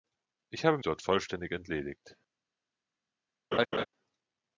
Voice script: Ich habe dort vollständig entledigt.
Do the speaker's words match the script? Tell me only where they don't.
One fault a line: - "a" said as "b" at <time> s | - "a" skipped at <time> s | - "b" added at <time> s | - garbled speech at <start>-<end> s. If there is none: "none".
none